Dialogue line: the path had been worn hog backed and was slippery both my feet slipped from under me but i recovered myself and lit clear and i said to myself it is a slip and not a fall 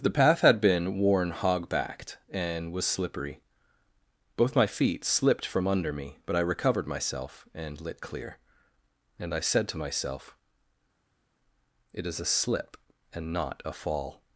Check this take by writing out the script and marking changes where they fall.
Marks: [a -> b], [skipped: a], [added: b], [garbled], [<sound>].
the path had been worn hog backed and was slippery both my feet slipped from under me but i recovered myself and lit clear and i said to myself it is a slip and not a fall